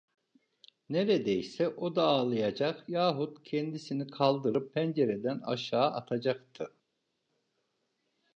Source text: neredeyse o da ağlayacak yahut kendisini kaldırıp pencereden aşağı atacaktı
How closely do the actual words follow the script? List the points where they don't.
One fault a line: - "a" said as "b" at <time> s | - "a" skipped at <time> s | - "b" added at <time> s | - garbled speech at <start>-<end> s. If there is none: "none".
none